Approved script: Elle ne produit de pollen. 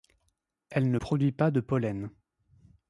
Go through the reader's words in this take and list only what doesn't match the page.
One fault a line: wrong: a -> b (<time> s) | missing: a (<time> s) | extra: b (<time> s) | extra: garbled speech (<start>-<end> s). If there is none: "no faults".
extra: pas (1.3 s)